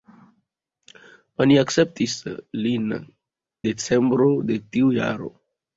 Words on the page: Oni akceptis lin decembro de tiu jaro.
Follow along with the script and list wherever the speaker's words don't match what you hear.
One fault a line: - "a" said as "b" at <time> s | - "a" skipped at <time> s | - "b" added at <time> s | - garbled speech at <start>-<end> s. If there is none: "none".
none